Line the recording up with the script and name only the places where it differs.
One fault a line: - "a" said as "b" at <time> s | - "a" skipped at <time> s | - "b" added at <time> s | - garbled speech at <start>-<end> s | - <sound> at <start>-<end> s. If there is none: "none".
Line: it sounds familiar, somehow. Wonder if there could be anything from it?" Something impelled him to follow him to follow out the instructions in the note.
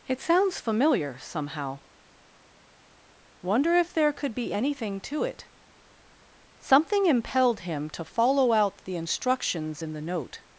- "from" said as "to" at 5.0 s
- "him to follow" skipped at 8.5 s